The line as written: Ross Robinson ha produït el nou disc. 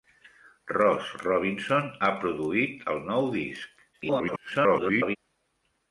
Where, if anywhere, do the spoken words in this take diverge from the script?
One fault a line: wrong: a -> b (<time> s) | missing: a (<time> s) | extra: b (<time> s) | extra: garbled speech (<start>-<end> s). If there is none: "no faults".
extra: garbled speech (3.9-5.2 s)